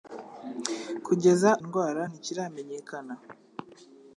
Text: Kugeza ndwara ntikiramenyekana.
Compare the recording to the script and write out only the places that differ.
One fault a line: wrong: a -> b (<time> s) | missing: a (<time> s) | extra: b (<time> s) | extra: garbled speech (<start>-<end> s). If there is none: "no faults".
no faults